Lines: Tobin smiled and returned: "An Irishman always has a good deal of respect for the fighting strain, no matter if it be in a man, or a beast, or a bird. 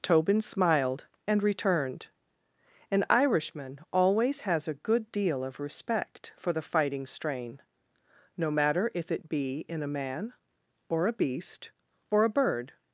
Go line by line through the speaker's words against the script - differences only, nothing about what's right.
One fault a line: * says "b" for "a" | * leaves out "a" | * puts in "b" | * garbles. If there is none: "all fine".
all fine